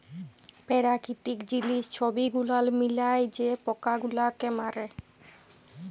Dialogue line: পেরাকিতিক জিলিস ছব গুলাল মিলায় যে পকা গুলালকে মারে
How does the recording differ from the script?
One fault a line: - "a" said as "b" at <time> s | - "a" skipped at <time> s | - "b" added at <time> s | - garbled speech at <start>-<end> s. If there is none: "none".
none